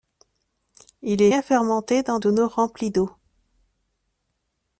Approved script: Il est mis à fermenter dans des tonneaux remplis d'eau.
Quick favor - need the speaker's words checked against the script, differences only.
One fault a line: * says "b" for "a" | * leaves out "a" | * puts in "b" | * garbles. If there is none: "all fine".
* leaves out "mis"
* leaves out "des"